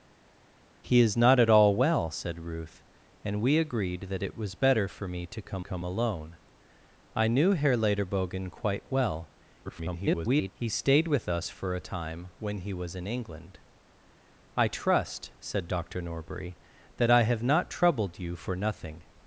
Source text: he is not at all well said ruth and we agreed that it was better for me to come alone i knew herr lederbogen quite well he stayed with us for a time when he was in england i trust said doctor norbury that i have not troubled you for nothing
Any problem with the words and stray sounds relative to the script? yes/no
yes